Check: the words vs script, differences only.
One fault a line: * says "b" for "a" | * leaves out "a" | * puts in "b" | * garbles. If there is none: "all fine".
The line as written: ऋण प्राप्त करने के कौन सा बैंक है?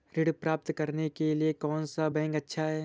* puts in "लिए"
* puts in "अच्छा"